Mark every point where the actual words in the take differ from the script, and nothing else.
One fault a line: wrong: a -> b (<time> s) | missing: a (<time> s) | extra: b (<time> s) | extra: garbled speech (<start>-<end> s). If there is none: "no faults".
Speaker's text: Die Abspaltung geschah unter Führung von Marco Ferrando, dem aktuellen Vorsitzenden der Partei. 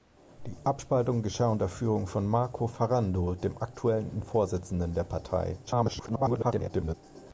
extra: garbled speech (5.7-6.9 s)